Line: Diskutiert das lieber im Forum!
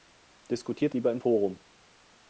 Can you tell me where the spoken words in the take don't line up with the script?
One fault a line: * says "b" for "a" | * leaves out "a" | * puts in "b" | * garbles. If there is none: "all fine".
* leaves out "das"